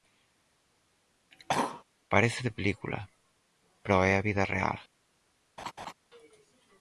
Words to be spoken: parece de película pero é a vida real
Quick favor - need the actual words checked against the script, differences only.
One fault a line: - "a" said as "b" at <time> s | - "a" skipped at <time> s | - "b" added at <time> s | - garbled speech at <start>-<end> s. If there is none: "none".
none